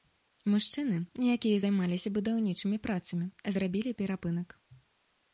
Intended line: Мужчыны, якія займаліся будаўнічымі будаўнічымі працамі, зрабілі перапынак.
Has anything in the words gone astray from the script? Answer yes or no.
yes